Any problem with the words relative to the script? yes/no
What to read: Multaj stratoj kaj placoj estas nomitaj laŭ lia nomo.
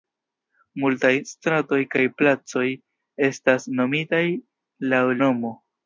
yes